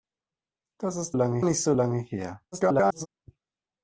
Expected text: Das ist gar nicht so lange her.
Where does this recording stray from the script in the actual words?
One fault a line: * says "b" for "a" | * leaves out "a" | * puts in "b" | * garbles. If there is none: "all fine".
* says "lange" for "gar"
* garbles